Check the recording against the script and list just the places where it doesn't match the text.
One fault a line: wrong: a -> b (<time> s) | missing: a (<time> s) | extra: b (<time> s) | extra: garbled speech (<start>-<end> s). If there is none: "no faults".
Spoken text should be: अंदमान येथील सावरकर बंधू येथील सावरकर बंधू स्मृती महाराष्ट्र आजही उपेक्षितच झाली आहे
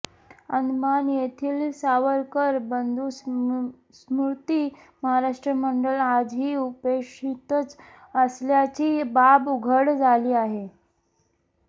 missing: येथील सावरकर बंधू (3.1 s)
extra: मंडळ (5.5 s)
extra: असल्याची बाब उघड (8.2 s)